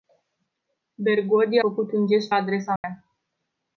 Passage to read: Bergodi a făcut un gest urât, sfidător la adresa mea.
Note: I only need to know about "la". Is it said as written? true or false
false